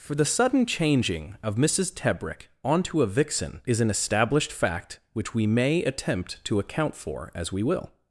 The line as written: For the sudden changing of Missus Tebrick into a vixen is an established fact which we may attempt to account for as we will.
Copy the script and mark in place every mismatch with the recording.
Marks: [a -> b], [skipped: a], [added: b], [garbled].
For the sudden changing of Missus Tebrick [into -> onto] a vixen is an established fact which we may attempt to account for as we will.